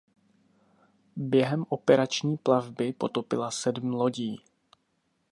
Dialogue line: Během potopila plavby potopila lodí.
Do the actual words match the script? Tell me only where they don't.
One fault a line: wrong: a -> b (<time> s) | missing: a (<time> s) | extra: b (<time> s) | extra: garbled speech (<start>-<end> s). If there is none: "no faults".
wrong: potopila -> operační (1.7 s)
extra: sedm (3.5 s)